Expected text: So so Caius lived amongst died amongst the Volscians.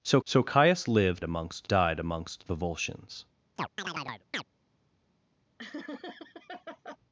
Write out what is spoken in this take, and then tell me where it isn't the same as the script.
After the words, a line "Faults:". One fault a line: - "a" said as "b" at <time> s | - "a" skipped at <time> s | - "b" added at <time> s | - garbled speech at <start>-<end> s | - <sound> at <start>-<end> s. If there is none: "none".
So so Caius lived amongst died amongst the Volscians.
Faults:
- chirp at 3.6-4.4 s
- laugh at 5.6-7.0 s